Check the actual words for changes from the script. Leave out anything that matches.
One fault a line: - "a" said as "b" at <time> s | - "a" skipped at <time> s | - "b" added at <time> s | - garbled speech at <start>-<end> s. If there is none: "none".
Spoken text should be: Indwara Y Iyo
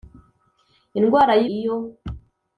none